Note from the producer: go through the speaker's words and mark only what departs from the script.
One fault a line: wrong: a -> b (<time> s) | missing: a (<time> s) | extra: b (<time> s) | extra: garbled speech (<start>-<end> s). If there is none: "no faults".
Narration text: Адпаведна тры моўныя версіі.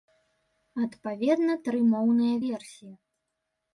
no faults